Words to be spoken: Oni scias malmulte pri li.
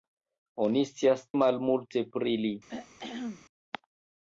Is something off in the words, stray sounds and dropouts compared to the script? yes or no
yes